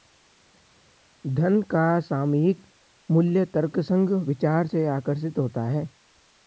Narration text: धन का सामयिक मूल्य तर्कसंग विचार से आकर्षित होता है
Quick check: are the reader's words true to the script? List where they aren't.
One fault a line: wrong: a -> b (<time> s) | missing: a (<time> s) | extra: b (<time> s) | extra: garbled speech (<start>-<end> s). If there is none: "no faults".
no faults